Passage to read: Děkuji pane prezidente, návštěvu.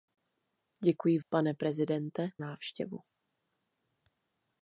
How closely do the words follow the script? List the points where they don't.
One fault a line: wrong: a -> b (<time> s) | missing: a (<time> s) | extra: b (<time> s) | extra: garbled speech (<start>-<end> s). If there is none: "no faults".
no faults